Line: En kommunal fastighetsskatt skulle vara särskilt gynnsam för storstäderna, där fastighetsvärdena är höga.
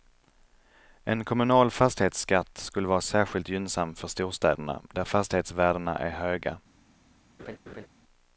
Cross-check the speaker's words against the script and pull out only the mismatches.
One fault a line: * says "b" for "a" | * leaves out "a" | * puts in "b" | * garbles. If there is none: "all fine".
all fine